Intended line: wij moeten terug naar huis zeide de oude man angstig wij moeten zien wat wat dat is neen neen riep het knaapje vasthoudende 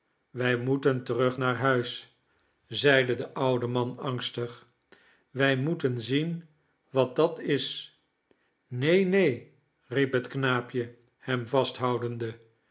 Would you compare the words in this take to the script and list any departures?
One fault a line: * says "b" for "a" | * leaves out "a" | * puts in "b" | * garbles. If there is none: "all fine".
* leaves out "wat"
* puts in "hem"